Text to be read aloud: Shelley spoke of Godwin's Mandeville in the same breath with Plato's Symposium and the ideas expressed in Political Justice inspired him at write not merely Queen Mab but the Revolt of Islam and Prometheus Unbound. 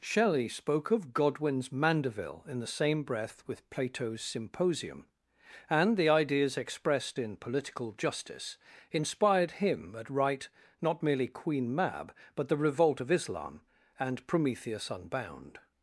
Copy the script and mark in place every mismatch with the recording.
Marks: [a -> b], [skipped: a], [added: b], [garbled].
Shelley spoke of Godwin's Mandeville in the same breath with Plato's Symposium and the ideas expressed in Political Justice inspired him at write not merely Queen Mab but the Revolt of Islam and Prometheus Unbound.